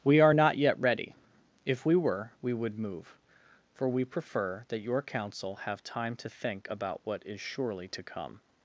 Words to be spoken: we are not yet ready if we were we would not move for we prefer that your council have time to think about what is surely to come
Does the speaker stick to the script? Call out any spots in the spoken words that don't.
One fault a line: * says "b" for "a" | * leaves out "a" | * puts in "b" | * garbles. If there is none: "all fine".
* leaves out "not"